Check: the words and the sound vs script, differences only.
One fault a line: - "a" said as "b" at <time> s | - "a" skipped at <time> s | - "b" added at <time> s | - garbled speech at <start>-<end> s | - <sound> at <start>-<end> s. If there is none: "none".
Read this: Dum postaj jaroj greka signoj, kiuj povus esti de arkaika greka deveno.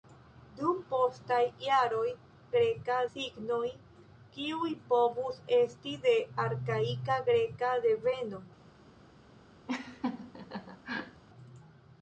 - laugh at 9.7-11.2 s